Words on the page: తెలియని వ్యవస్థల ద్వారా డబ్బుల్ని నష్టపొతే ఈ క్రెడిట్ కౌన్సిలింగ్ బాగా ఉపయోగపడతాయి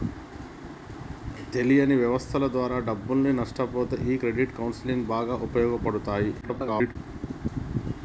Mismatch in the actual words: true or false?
true